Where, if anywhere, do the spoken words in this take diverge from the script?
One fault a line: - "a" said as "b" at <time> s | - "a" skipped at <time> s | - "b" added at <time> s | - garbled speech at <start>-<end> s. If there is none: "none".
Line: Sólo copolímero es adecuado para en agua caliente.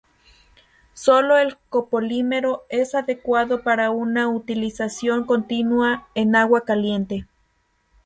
- "el" added at 1.4 s
- "una utilización continua" added at 3.9 s